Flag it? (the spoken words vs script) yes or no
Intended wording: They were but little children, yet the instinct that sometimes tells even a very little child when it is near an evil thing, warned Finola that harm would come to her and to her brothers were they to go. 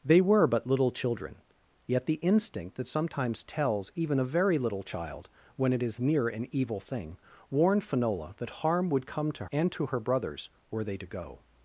yes